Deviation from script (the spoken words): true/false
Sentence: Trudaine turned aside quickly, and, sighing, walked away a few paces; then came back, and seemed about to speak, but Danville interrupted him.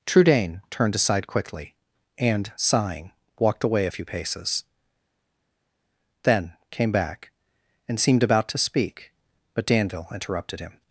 false